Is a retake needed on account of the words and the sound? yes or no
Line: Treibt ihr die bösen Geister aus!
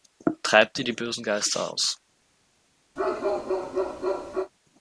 yes